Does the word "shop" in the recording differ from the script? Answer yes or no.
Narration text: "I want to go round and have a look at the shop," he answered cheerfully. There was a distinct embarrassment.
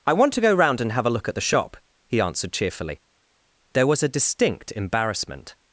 no